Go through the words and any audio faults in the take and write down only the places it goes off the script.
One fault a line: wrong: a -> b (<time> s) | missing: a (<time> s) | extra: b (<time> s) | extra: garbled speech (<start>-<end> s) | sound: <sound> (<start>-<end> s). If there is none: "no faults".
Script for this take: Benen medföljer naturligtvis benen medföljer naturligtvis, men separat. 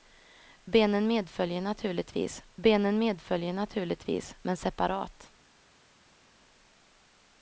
no faults